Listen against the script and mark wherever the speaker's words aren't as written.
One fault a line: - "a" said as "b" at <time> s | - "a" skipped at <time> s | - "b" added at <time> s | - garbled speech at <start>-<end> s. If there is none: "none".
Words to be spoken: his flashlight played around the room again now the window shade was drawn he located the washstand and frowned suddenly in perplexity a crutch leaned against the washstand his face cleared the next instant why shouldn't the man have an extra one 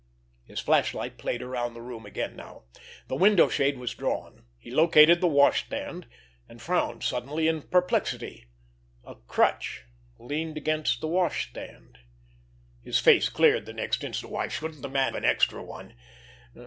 - "have" skipped at 15.1 s